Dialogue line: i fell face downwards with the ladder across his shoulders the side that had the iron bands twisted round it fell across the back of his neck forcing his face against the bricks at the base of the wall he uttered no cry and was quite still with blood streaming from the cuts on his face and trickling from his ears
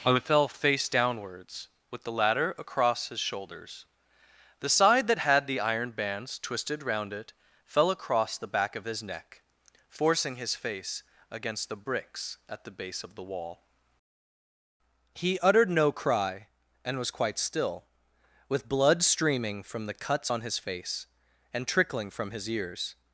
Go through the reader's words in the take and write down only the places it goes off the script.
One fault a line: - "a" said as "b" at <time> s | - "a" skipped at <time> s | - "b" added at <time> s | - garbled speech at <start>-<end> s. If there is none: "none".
none